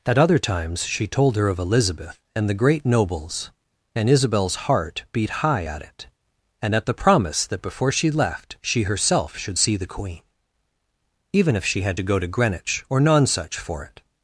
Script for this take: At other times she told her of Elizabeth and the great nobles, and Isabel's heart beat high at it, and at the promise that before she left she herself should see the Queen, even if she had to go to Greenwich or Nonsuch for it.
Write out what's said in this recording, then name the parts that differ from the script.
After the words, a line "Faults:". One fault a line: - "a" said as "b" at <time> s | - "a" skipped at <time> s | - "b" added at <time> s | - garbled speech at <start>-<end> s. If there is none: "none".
At other times she told her of Elizabeth and the great nobles, and Isabel's heart beat high at it, and at the promise that before she left she herself should see the Queen, even if she had to go to Greenwich or Nonsuch for it.
Faults:
none